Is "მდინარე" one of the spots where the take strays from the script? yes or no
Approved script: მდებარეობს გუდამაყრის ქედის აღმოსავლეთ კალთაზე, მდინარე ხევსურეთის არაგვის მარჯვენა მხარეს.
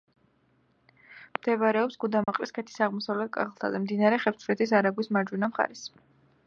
no